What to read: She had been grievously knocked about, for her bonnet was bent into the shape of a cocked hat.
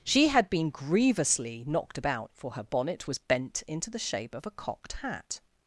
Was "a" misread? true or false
false